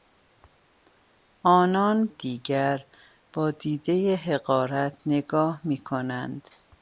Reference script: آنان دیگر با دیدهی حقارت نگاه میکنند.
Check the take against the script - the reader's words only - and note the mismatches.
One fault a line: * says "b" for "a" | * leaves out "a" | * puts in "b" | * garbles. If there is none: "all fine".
all fine